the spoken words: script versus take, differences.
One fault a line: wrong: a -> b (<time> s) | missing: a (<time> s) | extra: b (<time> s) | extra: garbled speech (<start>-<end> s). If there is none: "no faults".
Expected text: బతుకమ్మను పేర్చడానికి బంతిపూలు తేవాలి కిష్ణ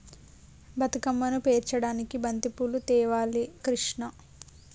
no faults